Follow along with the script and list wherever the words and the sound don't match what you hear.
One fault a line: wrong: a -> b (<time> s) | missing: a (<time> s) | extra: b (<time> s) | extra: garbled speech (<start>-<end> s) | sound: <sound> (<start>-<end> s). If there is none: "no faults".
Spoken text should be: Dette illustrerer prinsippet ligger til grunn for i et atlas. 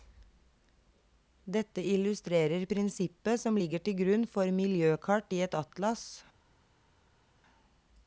extra: som (3.4 s)
extra: miljøkart (4.5 s)